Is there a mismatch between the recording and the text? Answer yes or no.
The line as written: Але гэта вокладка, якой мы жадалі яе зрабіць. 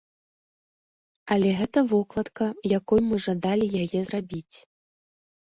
no